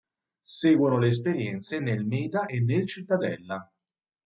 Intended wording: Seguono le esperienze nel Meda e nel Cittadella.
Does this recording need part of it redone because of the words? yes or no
no